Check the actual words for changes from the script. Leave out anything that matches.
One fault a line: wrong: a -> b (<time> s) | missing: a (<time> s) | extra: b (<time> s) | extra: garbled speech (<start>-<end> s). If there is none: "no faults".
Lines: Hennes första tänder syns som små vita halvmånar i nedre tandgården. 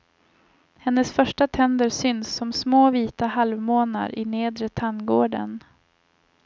no faults